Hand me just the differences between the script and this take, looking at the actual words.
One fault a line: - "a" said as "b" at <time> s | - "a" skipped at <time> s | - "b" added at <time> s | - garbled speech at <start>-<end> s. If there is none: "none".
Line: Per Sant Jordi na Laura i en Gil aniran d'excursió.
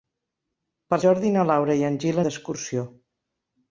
- "Sant" skipped at 1.0 s
- "aniran" skipped at 2.2 s